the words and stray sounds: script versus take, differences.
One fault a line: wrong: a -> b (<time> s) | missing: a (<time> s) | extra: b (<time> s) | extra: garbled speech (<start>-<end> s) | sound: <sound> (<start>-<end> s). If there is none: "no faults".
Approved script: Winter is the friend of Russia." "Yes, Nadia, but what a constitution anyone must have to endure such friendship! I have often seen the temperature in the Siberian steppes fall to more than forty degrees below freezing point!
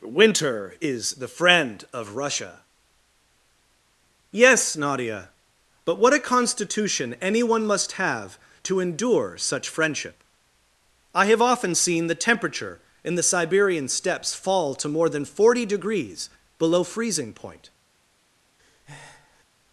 sound: breath (18.6-19.4 s)